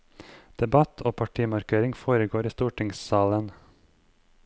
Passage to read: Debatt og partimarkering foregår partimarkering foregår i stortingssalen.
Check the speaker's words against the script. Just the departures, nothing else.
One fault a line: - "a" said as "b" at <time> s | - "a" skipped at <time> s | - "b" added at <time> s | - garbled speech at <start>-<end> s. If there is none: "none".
- "partimarkering foregår" skipped at 2.5 s